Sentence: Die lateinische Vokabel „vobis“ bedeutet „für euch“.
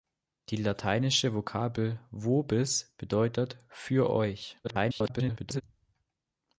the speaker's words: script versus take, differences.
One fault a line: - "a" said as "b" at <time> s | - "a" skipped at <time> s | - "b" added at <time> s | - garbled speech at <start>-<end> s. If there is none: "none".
- garbled speech at 4.6-5.6 s